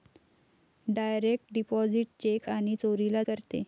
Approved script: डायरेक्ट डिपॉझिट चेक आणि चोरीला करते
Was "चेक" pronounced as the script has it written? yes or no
yes